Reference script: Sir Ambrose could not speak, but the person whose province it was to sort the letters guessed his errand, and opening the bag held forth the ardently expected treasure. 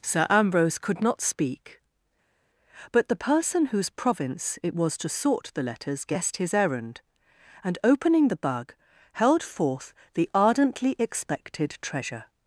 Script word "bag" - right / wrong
wrong